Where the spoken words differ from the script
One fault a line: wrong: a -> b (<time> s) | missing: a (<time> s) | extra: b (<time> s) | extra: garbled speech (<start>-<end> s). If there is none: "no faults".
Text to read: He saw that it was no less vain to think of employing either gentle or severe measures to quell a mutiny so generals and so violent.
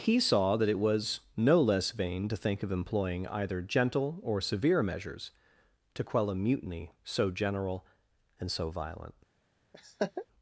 wrong: generals -> general (7.3 s)